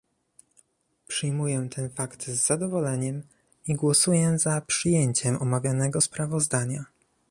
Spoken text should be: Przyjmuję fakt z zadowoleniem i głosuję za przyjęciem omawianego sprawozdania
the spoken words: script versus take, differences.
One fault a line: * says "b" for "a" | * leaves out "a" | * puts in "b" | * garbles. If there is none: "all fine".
* puts in "ten"